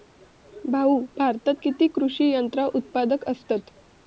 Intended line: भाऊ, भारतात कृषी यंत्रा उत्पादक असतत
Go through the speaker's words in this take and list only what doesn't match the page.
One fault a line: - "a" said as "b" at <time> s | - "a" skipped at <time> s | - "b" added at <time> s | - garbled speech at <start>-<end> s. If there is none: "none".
- "किती" added at 1.6 s